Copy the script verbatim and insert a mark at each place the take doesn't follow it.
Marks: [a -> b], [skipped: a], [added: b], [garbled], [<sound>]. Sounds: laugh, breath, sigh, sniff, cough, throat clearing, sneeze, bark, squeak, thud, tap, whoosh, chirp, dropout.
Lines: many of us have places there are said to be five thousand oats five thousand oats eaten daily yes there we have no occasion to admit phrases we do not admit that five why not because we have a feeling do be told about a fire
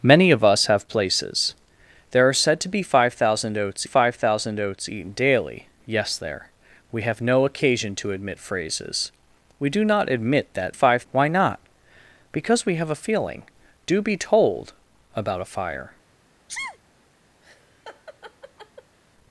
many of us have places there are said to be five thousand oats five thousand oats eaten daily yes there we have no occasion to admit phrases we do not admit that five why not because we have a feeling do be told about a fire [sneeze] [laugh]